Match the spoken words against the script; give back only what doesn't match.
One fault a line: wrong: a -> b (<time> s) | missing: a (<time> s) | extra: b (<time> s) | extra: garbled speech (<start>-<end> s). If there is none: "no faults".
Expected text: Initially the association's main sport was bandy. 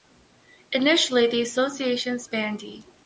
missing: main sport was (2.3 s)